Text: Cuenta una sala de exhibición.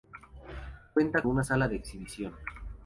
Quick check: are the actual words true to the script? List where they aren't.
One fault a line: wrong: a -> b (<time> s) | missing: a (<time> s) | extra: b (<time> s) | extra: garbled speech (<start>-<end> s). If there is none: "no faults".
no faults